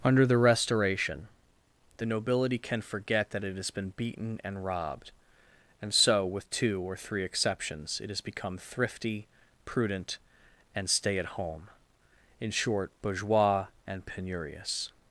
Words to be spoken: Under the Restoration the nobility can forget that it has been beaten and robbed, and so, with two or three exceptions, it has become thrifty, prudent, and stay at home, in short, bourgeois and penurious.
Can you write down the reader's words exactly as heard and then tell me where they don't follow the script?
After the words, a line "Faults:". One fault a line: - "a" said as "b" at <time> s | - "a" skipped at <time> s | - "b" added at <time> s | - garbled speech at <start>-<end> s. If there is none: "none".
Under the Restoration the nobility can forget that it has been beaten and robbed, and so, with two or three exceptions, it has become thrifty, prudent, and stay at home, in short, bourgeois and penurious.
Faults:
none